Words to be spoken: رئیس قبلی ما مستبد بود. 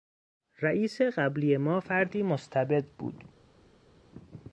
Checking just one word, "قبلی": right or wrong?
right